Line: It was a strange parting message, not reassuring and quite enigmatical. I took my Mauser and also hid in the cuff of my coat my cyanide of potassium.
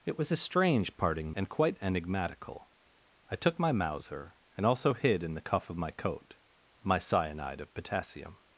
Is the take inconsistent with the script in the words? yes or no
yes